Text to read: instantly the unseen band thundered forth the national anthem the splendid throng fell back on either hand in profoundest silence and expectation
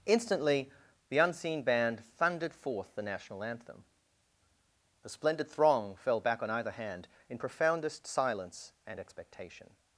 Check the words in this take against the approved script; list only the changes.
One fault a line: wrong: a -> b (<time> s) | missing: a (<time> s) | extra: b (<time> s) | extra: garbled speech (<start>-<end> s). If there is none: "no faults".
wrong: the -> a (5.0 s)